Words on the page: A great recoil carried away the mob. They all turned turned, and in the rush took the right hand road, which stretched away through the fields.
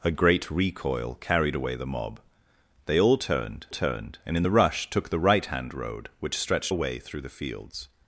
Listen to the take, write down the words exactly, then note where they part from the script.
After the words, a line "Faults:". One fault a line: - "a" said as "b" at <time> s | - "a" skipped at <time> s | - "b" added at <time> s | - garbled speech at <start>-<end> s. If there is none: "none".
A great recoil carried away the mob. They all turned turned, and in the rush took the right hand road, which stretched away through the fields.
Faults:
none